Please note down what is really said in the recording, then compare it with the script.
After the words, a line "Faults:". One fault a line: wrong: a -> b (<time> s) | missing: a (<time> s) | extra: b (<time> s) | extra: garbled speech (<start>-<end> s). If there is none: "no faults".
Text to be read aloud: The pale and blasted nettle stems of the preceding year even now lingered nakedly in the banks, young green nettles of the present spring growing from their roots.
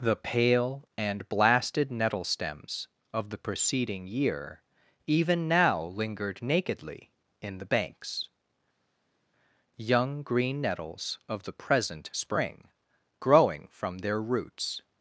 The pale and blasted nettle stems of the preceding year even now lingered nakedly in the banks, young green nettles of the present spring growing from their roots.
Faults:
no faults